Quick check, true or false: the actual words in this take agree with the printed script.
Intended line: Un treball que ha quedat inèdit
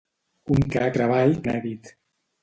false